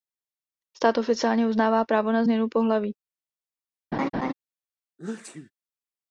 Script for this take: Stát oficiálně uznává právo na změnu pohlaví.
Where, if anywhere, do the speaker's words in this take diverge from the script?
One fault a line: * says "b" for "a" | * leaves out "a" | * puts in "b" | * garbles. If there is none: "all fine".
all fine